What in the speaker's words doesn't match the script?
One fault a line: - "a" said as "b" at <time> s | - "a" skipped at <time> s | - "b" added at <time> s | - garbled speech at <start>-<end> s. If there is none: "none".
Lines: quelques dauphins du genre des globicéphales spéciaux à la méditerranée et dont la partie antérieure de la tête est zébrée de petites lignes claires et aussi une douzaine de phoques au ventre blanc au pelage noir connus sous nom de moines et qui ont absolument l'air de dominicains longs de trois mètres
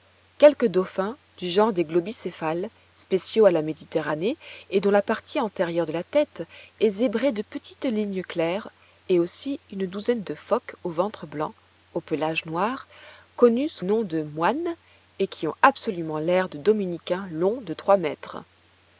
none